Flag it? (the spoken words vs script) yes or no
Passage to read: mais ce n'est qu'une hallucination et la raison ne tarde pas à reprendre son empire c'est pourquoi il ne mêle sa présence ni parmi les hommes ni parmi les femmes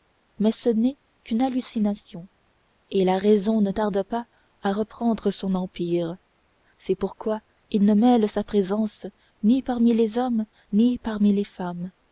no